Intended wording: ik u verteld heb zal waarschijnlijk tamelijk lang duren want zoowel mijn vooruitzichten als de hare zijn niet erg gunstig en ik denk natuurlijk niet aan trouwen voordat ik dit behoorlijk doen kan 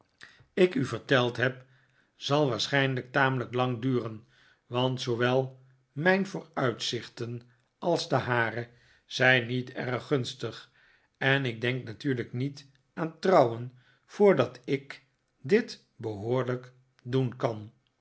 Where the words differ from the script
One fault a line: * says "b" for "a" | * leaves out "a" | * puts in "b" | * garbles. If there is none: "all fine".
all fine